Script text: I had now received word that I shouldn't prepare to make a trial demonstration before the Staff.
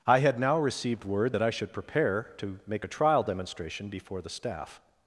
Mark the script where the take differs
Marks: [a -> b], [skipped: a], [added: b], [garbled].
I had now received word that I [shouldn't -> should] prepare to make a trial demonstration before the Staff.